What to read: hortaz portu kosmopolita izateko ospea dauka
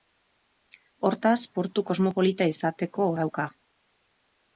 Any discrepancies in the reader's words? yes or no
yes